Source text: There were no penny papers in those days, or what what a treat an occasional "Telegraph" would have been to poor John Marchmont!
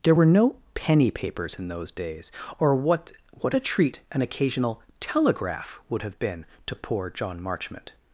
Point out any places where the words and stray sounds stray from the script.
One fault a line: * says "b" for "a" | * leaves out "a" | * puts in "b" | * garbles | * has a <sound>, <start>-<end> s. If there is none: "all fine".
all fine